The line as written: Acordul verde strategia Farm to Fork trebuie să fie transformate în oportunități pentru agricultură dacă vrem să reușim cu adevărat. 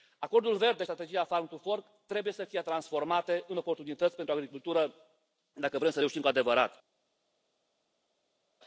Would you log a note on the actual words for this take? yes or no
no